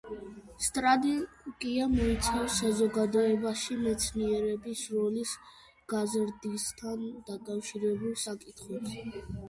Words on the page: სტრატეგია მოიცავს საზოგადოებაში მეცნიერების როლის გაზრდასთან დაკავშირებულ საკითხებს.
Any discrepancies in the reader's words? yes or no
no